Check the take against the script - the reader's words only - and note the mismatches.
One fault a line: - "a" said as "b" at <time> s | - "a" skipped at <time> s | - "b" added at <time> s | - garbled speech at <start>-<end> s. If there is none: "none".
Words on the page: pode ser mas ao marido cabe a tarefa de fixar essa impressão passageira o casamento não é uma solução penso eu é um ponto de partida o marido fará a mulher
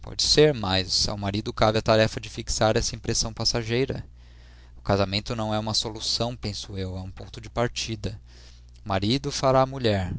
none